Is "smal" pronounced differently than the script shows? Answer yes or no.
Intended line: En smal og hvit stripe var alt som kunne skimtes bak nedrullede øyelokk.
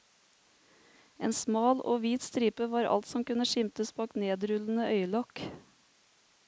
no